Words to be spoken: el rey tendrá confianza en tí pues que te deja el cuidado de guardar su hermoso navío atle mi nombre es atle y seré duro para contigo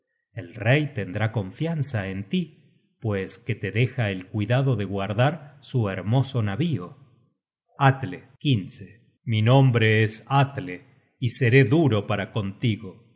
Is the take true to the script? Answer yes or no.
yes